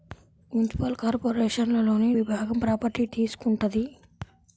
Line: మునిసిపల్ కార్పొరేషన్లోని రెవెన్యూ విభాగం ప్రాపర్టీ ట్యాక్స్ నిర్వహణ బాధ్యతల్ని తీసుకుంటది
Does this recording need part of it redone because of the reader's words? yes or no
yes